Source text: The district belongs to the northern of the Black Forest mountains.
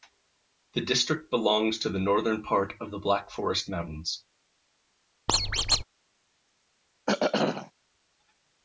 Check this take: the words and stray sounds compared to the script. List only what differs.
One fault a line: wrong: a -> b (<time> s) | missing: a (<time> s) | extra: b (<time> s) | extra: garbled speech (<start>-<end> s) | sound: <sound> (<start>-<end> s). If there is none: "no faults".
extra: part (2.4 s)
sound: squeak (5.3-5.8 s)
sound: throat clearing (7.1-7.7 s)